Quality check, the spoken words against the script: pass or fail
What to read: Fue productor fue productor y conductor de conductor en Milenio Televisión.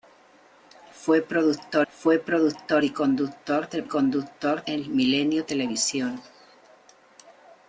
pass